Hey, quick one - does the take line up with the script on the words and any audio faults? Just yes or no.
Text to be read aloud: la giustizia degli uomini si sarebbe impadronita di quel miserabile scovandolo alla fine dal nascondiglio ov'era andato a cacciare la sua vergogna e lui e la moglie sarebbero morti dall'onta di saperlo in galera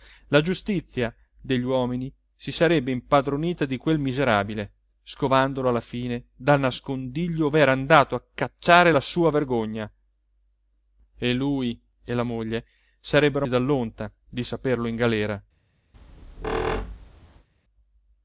no